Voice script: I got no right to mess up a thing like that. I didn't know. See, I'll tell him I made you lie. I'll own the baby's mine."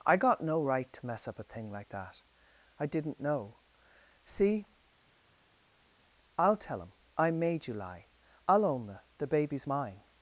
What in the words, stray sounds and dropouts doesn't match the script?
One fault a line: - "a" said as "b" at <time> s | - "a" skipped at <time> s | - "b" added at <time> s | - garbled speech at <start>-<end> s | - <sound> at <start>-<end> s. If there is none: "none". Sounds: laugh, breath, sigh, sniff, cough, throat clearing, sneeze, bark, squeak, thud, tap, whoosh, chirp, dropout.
- "the" added at 9.2 s